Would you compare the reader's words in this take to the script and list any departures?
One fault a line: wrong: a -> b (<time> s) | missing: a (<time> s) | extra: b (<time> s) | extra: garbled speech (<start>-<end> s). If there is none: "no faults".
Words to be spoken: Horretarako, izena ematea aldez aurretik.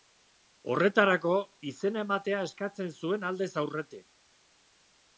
extra: eskatzen zuen (2.5 s)